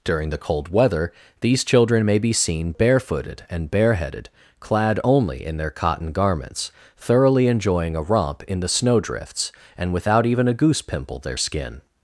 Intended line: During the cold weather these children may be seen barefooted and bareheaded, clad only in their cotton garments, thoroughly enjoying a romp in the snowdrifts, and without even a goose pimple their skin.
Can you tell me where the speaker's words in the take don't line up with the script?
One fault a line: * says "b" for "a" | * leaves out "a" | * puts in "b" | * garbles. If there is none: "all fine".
all fine